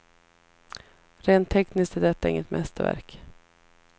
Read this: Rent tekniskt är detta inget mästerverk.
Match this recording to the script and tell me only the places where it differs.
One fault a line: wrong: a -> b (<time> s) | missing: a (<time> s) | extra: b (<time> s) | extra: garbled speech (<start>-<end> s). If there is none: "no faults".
no faults